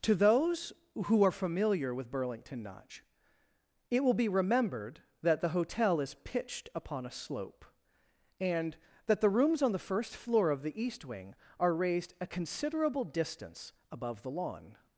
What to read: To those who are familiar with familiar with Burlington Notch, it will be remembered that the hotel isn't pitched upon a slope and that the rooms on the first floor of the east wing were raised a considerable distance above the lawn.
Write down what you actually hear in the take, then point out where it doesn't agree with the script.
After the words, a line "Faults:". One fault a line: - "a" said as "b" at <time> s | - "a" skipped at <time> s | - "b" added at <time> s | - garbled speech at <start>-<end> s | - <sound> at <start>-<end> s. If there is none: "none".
To those who are familiar with Burlington Notch, it will be remembered that the hotel is pitched upon a slope and that the rooms on the first floor of the east wing are raised a considerable distance above the lawn.
Faults:
- "familiar with" skipped at 2.1 s
- "isn't" said as "is" at 6.0 s
- "were" said as "are" at 11.6 s